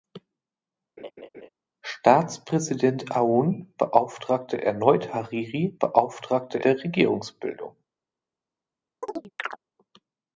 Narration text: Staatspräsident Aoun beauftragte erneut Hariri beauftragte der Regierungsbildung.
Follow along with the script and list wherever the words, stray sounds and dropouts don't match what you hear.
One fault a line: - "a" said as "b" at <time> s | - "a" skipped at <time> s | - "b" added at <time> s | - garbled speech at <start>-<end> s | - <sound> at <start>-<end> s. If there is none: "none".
- laugh at 1.0-1.5 s
- chirp at 9.0-9.6 s